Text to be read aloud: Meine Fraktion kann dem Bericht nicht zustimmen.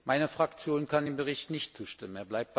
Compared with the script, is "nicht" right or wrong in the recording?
right